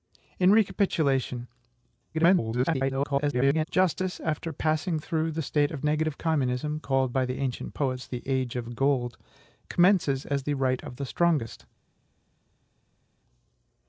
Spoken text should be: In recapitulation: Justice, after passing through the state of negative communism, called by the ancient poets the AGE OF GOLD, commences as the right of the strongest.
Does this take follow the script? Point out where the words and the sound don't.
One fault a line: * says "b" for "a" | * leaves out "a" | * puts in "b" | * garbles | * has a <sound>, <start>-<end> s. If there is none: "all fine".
* garbles